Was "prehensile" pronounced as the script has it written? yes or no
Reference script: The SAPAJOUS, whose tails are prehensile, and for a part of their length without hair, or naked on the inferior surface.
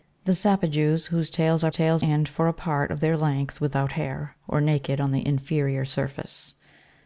no